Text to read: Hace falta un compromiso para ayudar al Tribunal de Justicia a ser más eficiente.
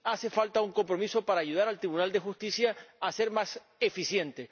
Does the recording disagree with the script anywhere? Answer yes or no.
no